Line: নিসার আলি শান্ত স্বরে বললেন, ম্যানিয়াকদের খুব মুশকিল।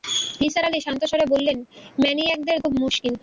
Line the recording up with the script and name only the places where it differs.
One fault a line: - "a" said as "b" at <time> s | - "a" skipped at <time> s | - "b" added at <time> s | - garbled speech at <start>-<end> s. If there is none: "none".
none